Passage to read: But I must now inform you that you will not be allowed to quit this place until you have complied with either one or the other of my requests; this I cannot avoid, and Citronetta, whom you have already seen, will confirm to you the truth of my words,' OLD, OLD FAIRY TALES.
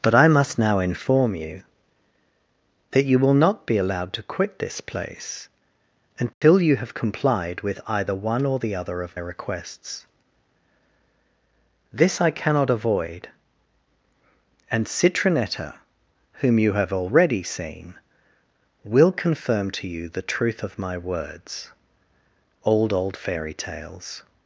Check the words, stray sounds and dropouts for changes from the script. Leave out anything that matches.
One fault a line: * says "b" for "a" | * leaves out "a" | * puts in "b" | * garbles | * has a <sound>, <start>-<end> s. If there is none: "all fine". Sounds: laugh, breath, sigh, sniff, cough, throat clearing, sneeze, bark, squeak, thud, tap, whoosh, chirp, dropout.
* has a dropout, 6.3-6.4 s
* leaves out "my"